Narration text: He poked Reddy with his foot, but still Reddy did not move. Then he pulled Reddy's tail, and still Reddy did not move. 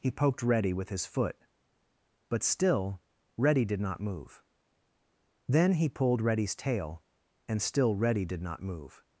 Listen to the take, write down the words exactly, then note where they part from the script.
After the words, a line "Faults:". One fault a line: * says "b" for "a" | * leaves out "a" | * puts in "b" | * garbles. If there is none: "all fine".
He poked Reddy with his foot, but still Reddy did not move. Then he pulled Reddy's tail, and still Reddy did not move.
Faults:
all fine